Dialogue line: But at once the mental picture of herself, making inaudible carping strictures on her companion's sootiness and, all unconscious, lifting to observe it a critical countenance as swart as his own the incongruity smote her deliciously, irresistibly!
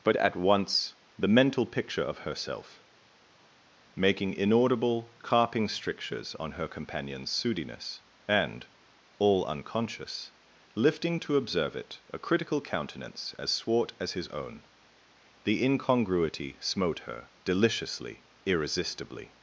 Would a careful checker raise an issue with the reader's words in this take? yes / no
no